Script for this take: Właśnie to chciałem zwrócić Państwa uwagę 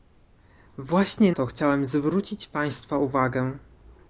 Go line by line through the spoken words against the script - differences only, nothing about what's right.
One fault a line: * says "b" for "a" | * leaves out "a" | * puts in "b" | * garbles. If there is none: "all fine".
all fine